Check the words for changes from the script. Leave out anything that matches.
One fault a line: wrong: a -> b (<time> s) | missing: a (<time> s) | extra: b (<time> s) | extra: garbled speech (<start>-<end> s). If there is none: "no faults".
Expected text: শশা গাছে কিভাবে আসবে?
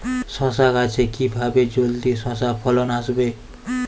extra: জলদি শশা ফলন (1.8 s)